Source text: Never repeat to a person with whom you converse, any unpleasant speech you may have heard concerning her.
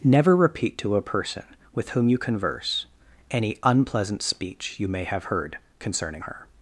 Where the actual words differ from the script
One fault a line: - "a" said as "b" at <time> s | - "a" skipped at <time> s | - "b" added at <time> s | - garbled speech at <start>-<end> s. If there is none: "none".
none